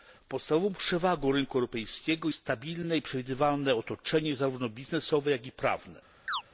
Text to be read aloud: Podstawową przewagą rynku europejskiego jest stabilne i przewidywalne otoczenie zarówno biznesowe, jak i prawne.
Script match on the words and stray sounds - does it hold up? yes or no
no